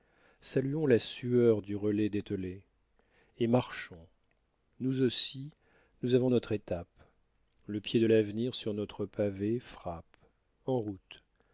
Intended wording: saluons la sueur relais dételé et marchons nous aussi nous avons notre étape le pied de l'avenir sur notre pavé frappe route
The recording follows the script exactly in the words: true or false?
false